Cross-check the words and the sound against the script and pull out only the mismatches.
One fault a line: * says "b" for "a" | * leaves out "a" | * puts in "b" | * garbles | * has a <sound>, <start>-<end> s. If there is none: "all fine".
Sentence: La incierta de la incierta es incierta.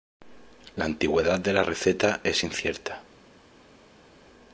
* says "antigüedad" for "incierta"
* says "receta" for "incierta"